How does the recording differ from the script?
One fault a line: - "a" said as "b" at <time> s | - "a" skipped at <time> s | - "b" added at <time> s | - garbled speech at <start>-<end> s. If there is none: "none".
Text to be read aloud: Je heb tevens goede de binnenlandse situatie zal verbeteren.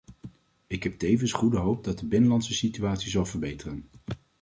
- "Je" said as "Ik" at 0.7 s
- "hoop dat" added at 1.6 s